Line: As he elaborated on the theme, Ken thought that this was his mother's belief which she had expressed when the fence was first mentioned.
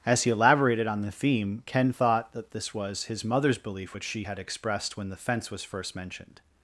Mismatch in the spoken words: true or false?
false